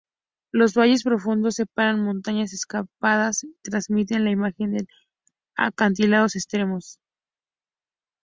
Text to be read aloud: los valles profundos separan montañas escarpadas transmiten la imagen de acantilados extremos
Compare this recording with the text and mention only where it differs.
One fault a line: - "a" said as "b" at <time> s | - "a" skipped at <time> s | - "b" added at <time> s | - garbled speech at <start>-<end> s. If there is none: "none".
none